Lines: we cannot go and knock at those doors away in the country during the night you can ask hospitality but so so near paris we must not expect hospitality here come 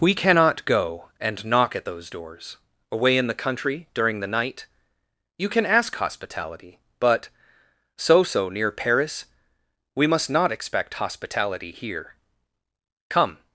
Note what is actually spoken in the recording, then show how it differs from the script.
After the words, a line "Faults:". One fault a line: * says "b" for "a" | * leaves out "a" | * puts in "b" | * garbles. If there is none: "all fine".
we cannot go and knock at those doors away in the country during the night you can ask hospitality but so so near paris we must not expect hospitality here come
Faults:
all fine